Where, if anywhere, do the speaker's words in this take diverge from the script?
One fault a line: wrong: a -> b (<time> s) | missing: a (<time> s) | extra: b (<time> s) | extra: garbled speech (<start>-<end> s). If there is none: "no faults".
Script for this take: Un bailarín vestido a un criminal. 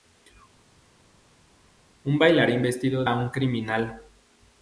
no faults